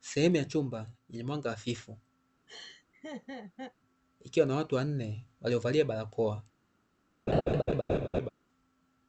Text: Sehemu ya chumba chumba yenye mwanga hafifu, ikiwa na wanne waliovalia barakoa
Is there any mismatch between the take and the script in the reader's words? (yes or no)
yes